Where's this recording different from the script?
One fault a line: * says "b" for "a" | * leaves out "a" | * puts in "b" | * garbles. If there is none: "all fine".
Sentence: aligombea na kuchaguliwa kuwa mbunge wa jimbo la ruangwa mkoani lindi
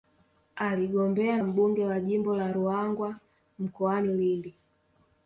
* leaves out "na kuchaguliwa kuwa"